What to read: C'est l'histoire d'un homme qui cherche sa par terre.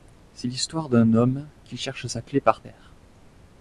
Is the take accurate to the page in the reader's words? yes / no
no